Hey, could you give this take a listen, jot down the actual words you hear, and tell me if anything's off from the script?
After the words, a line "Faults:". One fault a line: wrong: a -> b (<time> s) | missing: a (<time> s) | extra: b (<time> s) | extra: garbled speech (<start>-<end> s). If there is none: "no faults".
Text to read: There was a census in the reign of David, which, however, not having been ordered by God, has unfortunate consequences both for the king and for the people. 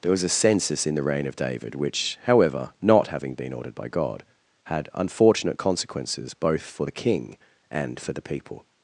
There was a census in the reign of David, which, however, not having been ordered by God, had unfortunate consequences both for the king and for the people.
Faults:
wrong: has -> had (4.7 s)